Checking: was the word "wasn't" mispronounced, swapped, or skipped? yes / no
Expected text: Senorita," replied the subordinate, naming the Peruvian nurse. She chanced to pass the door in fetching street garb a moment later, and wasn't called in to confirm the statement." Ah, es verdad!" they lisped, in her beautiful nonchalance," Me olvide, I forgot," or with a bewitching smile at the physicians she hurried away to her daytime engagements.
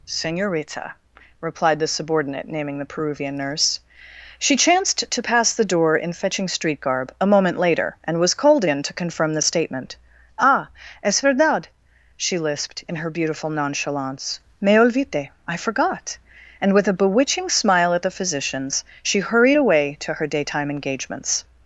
yes